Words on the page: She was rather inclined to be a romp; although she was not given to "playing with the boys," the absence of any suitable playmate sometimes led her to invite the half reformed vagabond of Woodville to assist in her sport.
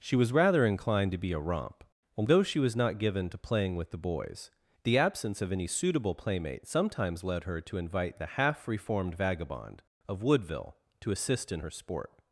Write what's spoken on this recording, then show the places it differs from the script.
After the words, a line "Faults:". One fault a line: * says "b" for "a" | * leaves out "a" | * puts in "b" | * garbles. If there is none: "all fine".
She was rather inclined to be a romp; although she was not given to "playing with the boys," the absence of any suitable playmate sometimes led her to invite the half reformed vagabond of Woodville to assist in her sport.
Faults:
all fine